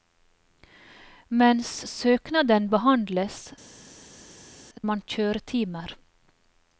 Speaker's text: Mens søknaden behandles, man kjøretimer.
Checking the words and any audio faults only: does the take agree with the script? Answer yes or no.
yes